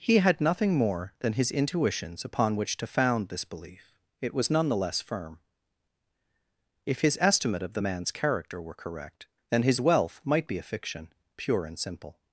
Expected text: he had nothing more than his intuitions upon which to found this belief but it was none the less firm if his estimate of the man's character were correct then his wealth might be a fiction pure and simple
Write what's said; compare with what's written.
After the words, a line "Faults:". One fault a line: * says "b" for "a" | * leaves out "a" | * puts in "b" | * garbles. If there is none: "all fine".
he had nothing more than his intuitions upon which to found this belief it was none the less firm if his estimate of the man's character were correct then his wealth might be a fiction pure and simple
Faults:
* leaves out "but"